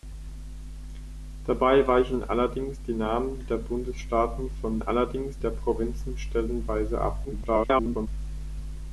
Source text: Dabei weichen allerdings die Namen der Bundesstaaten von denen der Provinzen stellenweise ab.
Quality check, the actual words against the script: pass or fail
fail